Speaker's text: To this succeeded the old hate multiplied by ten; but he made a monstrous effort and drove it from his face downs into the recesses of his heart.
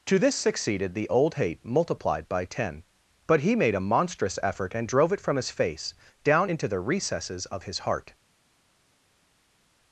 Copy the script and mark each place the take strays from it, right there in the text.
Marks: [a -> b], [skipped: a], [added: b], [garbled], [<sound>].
To this succeeded the old hate multiplied by ten; but he made a monstrous effort and drove it from his face [downs -> down] into the recesses of his heart.